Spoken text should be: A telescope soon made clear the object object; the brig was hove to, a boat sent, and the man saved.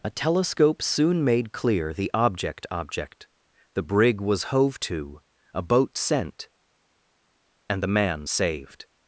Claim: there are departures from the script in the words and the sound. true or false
false